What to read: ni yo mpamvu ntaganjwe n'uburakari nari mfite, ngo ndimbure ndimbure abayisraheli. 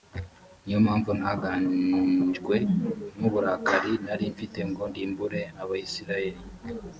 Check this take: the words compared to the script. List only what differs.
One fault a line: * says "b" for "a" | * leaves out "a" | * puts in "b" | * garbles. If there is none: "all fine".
* leaves out "ndimbure"